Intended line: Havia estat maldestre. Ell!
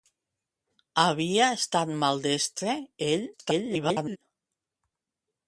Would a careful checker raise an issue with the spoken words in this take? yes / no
yes